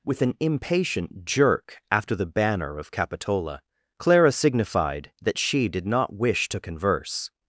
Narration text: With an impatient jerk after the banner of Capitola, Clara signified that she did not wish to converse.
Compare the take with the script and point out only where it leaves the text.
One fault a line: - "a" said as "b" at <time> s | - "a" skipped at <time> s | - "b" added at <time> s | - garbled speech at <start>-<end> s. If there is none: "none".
none